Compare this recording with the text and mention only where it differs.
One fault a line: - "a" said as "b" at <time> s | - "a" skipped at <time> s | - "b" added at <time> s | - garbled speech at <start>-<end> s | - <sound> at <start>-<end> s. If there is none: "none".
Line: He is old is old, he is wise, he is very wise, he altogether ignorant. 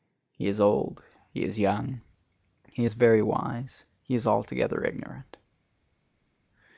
- "is old" skipped at 1.0 s
- "wise" said as "young" at 1.6 s
- "is" added at 4.1 s